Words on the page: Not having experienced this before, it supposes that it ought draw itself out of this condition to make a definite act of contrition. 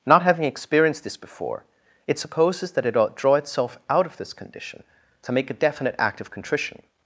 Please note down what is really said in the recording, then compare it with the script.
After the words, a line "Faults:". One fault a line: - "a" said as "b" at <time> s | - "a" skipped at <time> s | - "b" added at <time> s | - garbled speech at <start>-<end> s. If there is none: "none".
Not having experienced this before, it supposes that it ought draw itself out of this condition to make a definite act of contrition.
Faults:
none